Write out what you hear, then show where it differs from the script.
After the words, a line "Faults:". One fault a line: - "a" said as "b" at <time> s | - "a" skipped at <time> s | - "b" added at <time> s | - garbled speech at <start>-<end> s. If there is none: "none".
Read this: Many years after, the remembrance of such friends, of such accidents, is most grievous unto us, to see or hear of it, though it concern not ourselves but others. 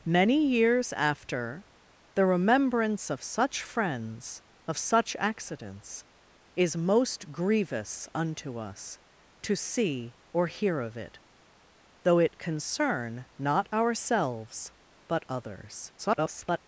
Many years after, the remembrance of such friends, of such accidents, is most grievous unto us, to see or hear of it, though it concern not ourselves but others. [garbled]
Faults:
- garbled speech at 16.0-16.6 s